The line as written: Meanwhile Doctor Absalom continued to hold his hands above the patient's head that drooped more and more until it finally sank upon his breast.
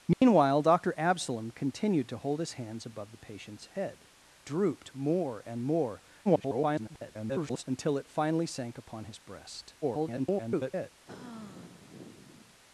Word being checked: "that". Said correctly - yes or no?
no